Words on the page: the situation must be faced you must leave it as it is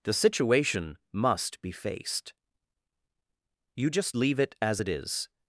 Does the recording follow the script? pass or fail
fail